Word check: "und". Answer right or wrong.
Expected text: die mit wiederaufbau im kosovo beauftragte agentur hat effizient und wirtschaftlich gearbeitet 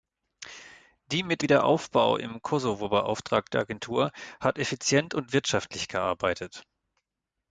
right